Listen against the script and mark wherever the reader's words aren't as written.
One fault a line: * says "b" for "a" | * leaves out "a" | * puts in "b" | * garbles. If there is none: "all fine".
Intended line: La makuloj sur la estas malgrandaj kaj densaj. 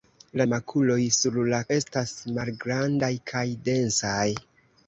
all fine